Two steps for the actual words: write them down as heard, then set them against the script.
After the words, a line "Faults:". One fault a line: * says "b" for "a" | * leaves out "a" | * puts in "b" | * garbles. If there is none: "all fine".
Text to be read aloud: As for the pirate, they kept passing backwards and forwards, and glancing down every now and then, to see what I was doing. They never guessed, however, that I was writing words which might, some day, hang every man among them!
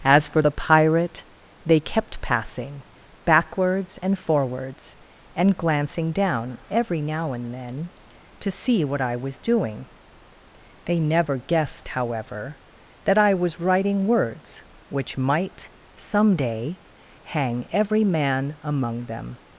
As for the pirate, they kept passing backwards and forwards, and glancing down every now and then, to see what I was doing. They never guessed, however, that I was writing words which might, some day, hang every man among them!
Faults:
all fine